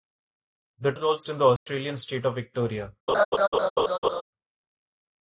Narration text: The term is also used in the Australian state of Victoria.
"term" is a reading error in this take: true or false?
true